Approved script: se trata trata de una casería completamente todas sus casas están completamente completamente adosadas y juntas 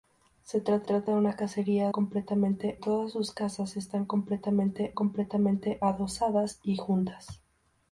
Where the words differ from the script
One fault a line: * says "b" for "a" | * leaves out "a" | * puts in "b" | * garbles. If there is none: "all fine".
all fine